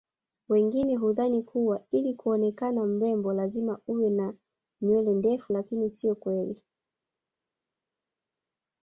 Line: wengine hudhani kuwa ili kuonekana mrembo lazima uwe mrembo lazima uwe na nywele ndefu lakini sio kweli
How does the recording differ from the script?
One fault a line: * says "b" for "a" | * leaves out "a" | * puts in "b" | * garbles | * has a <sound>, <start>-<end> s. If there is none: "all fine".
* leaves out "mrembo lazima uwe"